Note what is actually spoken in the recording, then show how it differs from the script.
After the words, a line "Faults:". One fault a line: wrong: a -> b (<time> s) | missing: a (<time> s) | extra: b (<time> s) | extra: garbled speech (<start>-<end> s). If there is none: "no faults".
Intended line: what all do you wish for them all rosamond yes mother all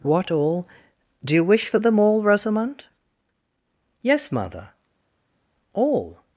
what all do you wish for them all rosamond yes mother all
Faults:
no faults